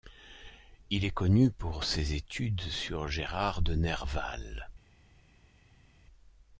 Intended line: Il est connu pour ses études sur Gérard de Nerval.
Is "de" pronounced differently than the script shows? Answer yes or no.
no